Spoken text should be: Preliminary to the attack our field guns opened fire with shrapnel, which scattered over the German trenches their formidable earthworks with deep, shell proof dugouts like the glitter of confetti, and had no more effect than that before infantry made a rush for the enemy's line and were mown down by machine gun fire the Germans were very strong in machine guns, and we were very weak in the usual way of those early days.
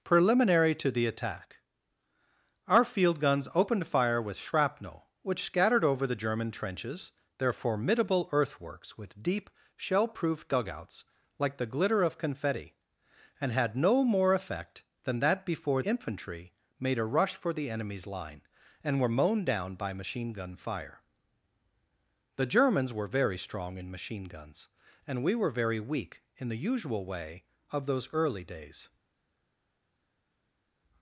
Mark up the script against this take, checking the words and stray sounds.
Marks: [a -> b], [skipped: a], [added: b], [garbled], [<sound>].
Preliminary to the attack our field guns opened fire with shrapnel, which scattered over the German trenches their formidable earthworks with deep, shell proof dugouts like the glitter of confetti, and had no more effect than that before infantry made a rush for the enemy's line and were mown down by machine gun fire the Germans were very strong in machine guns, and we were very weak in the usual way of those early days.